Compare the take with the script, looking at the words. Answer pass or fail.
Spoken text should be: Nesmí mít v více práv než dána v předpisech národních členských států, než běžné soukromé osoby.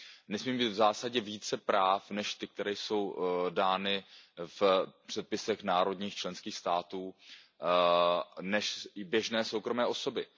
fail